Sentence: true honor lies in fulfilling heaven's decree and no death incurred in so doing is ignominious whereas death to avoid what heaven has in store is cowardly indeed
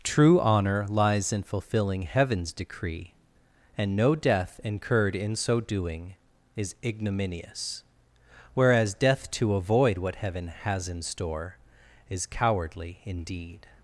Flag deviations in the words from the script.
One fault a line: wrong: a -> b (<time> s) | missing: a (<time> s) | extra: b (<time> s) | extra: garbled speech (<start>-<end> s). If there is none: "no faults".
no faults